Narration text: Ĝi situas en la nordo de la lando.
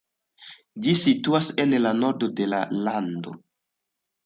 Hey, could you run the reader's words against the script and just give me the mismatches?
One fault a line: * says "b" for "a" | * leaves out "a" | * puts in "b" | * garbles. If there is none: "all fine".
all fine